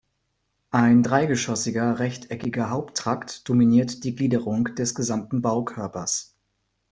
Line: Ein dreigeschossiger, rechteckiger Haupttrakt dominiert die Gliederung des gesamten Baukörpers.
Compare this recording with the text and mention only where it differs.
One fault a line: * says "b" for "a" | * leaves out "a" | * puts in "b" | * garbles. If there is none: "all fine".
all fine